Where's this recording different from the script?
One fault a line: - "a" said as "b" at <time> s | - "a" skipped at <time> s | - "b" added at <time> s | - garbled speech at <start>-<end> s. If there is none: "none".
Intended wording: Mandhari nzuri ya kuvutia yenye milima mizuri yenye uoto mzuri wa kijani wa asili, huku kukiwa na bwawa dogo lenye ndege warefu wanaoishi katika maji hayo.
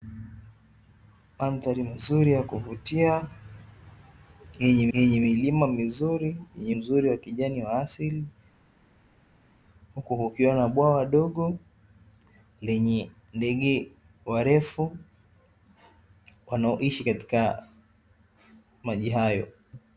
- "yenye" added at 5.0 s
- "uoto" skipped at 6.8 s